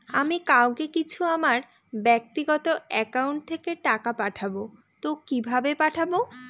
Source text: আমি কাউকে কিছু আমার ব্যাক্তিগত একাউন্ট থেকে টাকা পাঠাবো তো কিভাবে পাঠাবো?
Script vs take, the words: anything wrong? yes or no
no